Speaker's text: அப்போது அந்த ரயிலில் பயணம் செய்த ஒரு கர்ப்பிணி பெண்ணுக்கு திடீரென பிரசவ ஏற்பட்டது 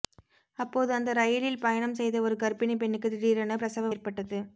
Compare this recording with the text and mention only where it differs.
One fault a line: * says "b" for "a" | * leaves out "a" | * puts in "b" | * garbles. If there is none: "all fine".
all fine